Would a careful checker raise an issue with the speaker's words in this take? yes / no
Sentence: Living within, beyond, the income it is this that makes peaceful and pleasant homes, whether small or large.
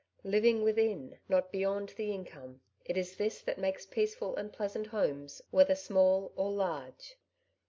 yes